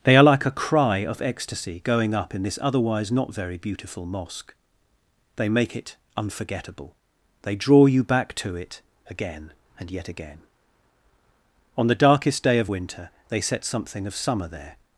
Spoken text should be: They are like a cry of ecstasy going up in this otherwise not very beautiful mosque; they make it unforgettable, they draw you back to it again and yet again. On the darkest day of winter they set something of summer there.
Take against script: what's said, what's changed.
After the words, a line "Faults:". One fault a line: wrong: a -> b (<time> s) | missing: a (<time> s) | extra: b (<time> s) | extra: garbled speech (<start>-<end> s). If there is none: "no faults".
They are like a cry of ecstasy going up in this otherwise not very beautiful mosque; they make it unforgettable, they draw you back to it again and yet again. On the darkest day of winter they set something of summer there.
Faults:
no faults